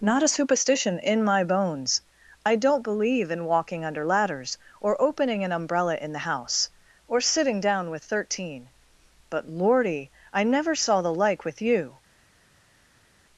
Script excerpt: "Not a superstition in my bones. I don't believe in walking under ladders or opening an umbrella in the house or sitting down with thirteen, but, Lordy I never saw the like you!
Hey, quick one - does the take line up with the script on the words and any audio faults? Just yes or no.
no